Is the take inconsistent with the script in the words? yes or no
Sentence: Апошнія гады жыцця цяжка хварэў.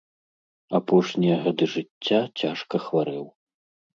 no